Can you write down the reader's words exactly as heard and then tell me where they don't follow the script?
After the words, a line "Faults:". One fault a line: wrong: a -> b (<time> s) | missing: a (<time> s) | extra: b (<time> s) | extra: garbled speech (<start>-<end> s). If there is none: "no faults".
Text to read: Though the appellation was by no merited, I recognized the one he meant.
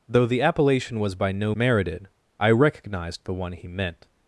Though the appellation was by no merited, I recognized the one he meant.
Faults:
no faults